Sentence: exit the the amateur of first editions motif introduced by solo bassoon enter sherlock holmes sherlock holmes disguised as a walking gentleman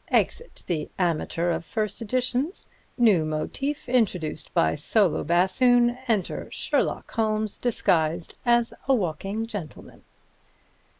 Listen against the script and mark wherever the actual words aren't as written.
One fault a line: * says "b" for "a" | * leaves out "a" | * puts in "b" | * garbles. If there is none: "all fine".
* leaves out "the"
* puts in "new"
* leaves out "sherlock holmes"